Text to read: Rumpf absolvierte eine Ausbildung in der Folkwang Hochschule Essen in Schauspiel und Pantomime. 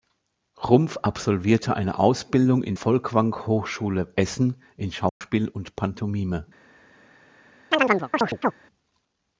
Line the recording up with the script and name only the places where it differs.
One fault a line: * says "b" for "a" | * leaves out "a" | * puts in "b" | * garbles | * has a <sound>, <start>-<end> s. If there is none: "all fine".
* leaves out "der"
* has a dropout, 5.1-5.2 s
* has a chirp, 7.7-8.5 s